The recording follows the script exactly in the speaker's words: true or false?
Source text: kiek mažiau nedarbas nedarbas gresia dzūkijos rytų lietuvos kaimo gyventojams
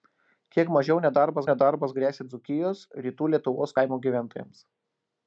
true